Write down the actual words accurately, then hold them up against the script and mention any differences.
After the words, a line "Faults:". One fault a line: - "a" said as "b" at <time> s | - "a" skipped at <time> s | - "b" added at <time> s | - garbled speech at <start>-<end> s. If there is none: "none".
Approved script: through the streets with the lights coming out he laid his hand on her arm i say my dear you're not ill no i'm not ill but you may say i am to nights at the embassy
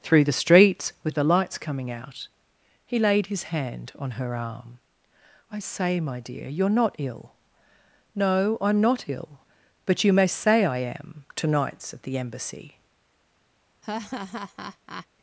through the streets with the lights coming out he laid his hand on her arm i say my dear you're not ill no i'm not ill but you may say i am to nights at the embassy
Faults:
none